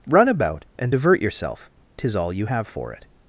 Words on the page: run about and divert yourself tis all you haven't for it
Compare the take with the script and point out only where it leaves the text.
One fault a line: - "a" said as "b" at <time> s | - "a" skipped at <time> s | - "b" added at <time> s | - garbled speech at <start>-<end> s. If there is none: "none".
- "haven't" said as "have" at 2.4 s